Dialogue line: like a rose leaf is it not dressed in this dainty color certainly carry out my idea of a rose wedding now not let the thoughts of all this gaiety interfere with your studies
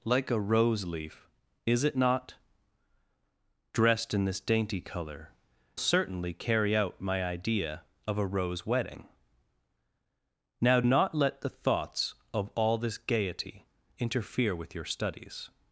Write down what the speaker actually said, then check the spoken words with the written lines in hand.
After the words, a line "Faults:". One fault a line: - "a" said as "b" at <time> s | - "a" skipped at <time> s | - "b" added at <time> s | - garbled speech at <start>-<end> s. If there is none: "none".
like a rose leaf is it not dressed in this dainty color certainly carry out my idea of a rose wedding now not let the thoughts of all this gaiety interfere with your studies
Faults:
none